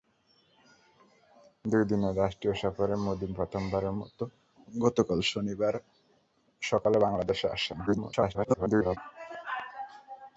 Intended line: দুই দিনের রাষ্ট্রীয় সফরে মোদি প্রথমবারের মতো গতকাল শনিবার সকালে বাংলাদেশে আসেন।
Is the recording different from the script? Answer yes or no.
yes